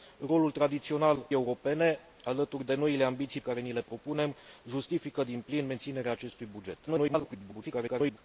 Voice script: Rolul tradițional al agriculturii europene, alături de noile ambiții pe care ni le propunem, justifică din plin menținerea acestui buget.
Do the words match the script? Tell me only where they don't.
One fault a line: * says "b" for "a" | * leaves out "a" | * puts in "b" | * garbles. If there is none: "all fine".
* leaves out "al agriculturii"
* leaves out "pe"
* garbles